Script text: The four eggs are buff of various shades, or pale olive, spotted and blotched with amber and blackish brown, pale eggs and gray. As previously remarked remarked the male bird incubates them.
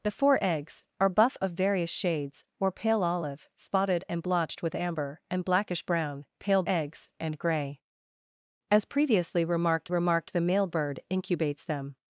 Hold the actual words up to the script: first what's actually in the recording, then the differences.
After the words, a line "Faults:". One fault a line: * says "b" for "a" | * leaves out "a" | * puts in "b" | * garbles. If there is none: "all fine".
The four eggs are buff of various shades, or pale olive, spotted and blotched with amber and blackish brown, pale eggs and gray. As previously remarked remarked the male bird incubates them.
Faults:
all fine